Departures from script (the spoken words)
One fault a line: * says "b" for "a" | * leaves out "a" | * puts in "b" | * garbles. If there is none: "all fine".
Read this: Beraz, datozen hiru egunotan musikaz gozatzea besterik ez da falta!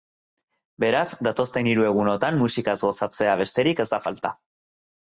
all fine